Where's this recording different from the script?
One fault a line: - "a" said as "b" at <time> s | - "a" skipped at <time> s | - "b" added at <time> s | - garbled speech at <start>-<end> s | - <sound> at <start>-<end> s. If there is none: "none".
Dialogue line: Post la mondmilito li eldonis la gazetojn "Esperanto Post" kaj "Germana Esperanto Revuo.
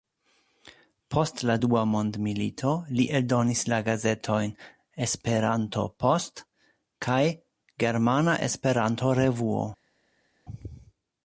- "dua" added at 1.6 s